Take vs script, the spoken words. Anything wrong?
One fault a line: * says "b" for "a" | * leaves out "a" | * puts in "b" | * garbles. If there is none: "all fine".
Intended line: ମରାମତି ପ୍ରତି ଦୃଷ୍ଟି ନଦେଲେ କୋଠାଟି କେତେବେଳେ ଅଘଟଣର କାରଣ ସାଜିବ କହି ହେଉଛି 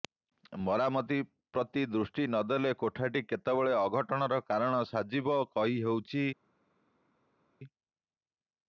all fine